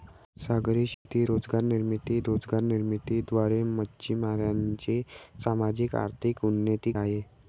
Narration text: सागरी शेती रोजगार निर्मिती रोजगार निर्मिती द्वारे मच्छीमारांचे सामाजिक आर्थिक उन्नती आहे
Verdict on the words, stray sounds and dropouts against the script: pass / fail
fail